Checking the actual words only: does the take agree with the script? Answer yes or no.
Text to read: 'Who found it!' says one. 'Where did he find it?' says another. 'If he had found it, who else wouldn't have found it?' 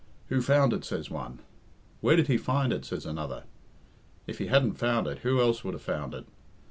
no